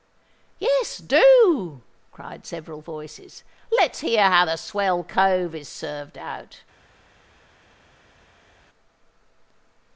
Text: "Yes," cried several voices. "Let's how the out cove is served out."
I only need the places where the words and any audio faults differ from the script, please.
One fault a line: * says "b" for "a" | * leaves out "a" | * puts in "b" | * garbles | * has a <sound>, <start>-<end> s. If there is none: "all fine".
* puts in "do"
* puts in "hear"
* says "swell" for "out"